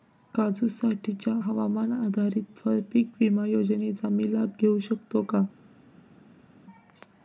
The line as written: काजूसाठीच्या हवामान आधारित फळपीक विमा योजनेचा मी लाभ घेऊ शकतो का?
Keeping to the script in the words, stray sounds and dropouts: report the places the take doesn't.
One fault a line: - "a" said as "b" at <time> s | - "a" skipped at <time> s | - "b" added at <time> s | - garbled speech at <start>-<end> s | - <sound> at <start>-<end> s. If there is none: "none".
none